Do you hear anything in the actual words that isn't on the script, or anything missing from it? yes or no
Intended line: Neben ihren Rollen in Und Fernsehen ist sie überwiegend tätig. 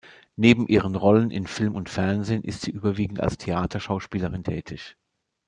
yes